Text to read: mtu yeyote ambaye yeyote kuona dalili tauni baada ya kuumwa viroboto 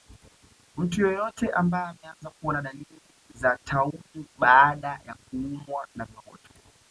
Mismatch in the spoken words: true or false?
true